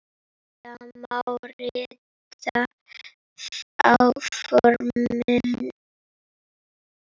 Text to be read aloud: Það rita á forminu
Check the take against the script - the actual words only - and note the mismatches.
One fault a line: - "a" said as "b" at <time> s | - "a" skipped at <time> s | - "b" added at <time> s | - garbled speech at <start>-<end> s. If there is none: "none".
- "má" added at 1.0 s